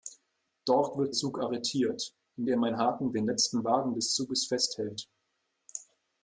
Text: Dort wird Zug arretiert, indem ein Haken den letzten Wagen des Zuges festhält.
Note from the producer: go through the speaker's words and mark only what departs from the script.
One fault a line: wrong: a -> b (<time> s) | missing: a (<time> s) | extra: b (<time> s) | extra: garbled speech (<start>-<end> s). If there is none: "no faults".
no faults